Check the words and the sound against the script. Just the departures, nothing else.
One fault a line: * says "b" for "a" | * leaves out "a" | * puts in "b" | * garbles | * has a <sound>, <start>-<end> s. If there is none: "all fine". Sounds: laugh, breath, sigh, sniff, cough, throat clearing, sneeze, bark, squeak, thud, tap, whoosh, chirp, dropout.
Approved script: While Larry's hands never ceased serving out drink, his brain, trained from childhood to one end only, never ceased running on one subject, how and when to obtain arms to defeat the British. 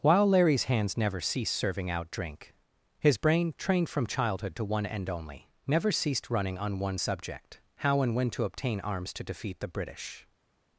all fine